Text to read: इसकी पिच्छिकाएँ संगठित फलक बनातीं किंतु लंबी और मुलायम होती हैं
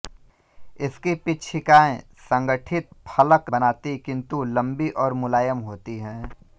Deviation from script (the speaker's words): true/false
false